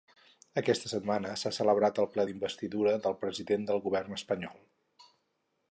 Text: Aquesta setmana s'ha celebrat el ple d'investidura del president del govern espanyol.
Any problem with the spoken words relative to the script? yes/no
no